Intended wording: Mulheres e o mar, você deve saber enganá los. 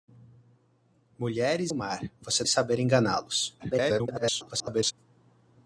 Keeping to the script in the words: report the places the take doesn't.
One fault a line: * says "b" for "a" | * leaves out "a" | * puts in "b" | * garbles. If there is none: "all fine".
* leaves out "e"
* leaves out "deve"
* garbles